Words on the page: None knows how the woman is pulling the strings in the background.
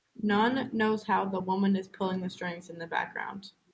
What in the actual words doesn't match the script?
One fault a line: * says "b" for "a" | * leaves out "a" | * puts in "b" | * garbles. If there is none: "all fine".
all fine